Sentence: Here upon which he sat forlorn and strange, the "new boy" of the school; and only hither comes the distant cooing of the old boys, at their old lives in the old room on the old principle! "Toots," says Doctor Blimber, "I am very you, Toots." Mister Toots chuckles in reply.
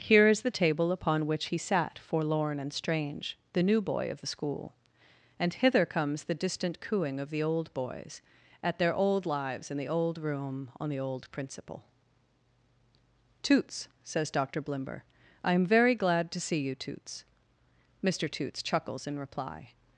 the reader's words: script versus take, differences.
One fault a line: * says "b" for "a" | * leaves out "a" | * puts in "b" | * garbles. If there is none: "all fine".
* puts in "is the table"
* leaves out "only"
* puts in "glad to see"